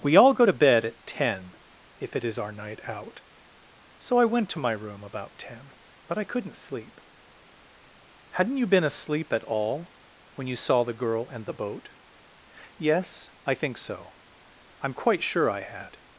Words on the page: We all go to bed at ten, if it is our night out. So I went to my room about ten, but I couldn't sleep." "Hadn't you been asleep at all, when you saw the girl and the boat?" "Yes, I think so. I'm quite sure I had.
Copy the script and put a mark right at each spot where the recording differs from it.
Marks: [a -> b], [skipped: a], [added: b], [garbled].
We all go to bed at ten, if it is our night out. So I went to my room about ten, but I couldn't sleep." "Hadn't you been asleep at all, when you saw the girl and the boat?" "Yes, I think so. I'm quite sure I had.